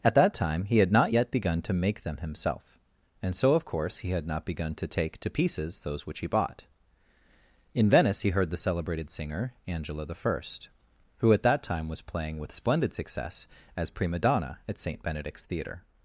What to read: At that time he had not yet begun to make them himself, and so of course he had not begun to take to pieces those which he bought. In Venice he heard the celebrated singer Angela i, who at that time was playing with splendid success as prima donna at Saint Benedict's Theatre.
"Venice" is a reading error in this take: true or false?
false